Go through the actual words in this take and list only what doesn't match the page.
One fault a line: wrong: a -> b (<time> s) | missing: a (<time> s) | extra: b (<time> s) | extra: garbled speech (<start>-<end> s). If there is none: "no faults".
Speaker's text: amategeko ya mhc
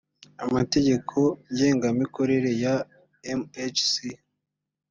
extra: ngengamikorere (1.5 s)